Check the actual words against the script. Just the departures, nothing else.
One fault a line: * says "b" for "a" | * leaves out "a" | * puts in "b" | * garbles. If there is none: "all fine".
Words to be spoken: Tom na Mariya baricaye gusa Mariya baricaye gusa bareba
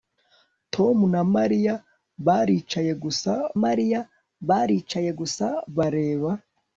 all fine